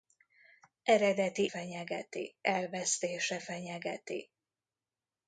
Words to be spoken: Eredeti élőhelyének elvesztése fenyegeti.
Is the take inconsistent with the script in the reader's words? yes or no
yes